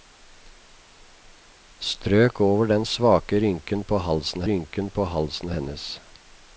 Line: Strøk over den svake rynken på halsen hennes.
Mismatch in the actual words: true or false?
true